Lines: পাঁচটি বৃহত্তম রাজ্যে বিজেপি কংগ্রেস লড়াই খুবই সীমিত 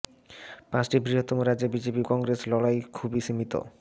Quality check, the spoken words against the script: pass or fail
pass